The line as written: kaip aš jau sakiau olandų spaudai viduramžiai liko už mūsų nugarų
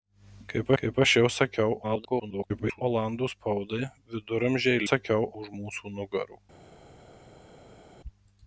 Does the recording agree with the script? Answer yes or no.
no